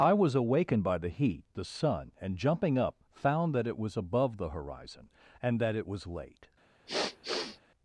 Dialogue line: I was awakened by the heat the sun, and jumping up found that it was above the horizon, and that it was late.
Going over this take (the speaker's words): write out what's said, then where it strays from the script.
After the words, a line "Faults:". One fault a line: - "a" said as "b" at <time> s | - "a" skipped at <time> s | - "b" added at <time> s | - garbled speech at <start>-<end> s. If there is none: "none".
I was awakened by the heat the sun, and jumping up found that it was above the horizon, and that it was late.
Faults:
none